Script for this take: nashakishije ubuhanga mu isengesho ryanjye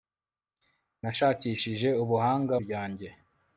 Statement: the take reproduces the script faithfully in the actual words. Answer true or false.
false